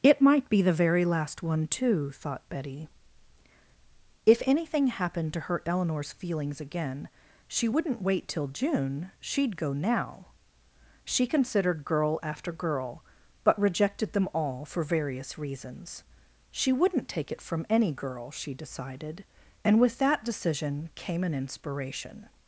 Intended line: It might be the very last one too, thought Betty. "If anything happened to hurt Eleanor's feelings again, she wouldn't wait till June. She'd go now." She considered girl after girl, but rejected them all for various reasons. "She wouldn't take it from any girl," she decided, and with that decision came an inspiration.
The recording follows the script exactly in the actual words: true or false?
true